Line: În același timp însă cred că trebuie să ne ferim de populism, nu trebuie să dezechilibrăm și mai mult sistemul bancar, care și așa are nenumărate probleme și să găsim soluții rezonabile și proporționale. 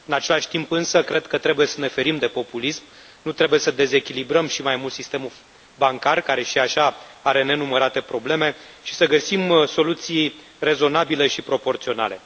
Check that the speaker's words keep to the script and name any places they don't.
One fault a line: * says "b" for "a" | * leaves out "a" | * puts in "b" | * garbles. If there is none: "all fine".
all fine